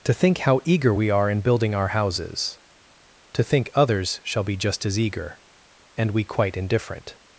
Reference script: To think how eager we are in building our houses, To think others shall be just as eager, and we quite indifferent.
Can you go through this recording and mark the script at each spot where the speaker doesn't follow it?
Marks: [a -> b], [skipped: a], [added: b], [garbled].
To think how eager we are in building our houses, To think others shall be just as eager, and we quite indifferent.